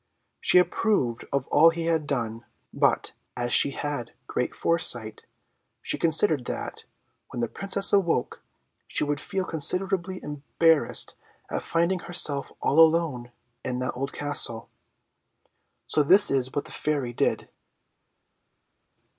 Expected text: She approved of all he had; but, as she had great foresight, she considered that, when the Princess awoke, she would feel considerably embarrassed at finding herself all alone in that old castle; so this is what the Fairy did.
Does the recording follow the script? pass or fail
fail